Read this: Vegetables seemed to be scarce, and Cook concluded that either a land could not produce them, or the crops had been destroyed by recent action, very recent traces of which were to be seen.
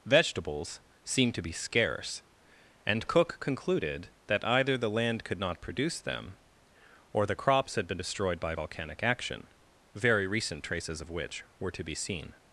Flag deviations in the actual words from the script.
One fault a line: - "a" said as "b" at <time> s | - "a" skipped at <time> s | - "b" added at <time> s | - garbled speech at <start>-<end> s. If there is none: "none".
- "a" said as "the" at 4.8 s
- "recent" said as "volcanic" at 8.5 s